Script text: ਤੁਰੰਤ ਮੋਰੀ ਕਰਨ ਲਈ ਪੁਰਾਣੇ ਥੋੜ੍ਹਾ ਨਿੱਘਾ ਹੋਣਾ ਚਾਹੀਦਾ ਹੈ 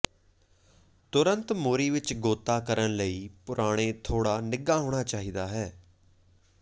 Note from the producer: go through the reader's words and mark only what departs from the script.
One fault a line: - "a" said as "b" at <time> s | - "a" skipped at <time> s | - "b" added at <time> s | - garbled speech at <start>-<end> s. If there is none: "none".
- "ਵਿੱਚ ਗੋਤਾ" added at 1.9 s